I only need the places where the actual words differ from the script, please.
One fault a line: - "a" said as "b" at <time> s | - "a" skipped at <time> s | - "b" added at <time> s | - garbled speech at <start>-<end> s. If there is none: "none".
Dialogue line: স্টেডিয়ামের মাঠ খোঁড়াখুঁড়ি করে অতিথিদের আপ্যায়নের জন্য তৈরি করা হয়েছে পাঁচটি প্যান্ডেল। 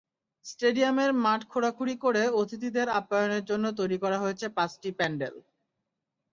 none